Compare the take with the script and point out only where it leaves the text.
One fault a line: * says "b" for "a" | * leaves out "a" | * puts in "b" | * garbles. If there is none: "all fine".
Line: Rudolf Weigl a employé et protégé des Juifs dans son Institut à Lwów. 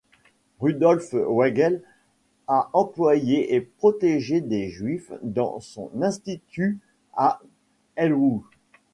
all fine